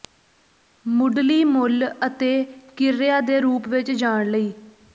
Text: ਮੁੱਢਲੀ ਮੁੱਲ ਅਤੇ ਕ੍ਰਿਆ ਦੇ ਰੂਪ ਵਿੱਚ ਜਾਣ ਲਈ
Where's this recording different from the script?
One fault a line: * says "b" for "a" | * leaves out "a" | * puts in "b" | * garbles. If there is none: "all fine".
all fine